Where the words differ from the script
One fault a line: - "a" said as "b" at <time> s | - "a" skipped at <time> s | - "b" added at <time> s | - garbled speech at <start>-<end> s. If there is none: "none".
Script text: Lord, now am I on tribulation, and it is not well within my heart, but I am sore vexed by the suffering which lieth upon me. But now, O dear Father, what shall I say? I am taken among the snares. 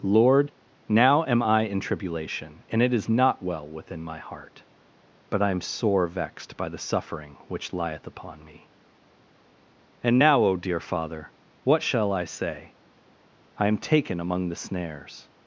- "on" said as "in" at 1.6 s
- "But" said as "And" at 10.0 s